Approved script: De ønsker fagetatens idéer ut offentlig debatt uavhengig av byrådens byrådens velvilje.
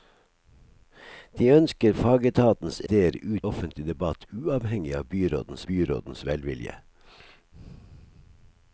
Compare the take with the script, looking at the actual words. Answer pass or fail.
pass